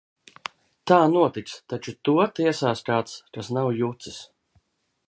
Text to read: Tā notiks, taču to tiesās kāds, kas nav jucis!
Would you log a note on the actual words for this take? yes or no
no